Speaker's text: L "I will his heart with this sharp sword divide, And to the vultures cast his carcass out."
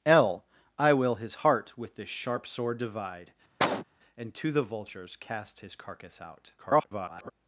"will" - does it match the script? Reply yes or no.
yes